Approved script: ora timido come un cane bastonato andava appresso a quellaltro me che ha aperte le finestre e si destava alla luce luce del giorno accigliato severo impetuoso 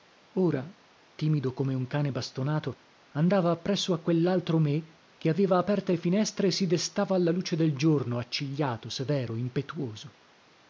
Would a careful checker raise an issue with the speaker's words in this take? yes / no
yes